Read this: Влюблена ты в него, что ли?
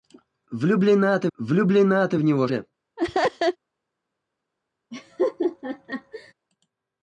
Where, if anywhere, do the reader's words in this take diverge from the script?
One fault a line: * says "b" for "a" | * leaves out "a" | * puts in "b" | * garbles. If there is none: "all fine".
* puts in "влюблена ты"
* leaves out "что"